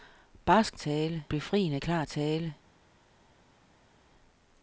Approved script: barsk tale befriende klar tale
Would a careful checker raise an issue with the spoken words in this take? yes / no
no